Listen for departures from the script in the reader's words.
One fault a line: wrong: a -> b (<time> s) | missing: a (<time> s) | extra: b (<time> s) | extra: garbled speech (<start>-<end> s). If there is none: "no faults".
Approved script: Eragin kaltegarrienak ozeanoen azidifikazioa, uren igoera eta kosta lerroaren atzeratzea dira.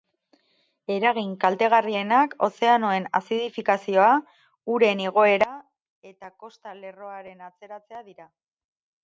no faults